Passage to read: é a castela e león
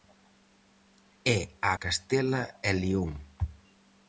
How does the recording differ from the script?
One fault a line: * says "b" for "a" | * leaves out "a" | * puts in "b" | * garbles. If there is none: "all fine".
all fine